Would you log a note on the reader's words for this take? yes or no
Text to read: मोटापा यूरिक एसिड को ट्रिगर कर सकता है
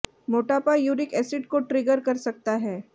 no